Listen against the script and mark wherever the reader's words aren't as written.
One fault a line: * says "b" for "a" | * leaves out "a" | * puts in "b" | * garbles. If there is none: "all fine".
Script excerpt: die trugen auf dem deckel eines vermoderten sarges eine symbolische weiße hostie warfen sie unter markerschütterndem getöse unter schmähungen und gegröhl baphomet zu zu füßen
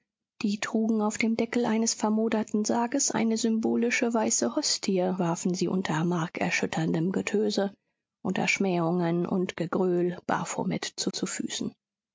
all fine